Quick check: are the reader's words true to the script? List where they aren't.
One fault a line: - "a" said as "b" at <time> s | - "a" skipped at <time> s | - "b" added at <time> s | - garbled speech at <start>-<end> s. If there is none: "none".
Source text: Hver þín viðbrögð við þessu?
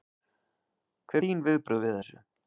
none